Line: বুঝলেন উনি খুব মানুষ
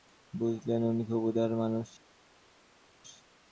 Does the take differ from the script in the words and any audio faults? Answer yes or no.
yes